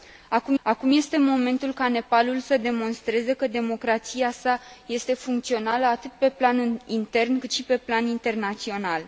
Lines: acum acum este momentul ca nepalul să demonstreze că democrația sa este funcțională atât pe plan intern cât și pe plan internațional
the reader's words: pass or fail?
pass